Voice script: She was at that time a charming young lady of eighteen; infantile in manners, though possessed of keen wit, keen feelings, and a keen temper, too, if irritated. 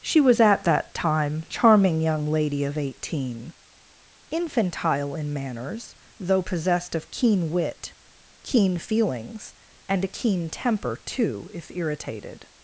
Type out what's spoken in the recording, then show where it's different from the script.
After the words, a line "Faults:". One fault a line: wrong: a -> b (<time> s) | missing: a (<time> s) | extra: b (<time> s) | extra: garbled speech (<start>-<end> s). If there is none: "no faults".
She was at that time charming young lady of eighteen; infantile in manners, though possessed of keen wit, keen feelings, and a keen temper, too, if irritated.
Faults:
missing: a (1.4 s)